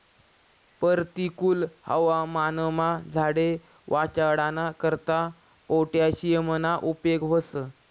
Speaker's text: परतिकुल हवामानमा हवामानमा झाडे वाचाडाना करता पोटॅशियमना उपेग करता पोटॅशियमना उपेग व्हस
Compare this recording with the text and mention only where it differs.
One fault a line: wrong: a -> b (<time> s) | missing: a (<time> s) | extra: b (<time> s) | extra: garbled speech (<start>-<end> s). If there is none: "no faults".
missing: हवामानमा (2.9 s)
missing: करता पोटॅशियमना उपेग (7.2 s)